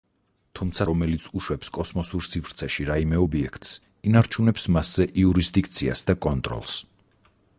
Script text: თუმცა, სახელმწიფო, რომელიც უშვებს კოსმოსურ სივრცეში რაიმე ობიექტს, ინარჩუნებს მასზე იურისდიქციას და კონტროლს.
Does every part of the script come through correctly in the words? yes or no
no